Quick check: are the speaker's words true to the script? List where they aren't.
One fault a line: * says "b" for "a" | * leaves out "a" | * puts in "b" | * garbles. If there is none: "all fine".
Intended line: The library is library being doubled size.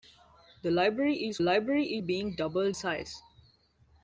all fine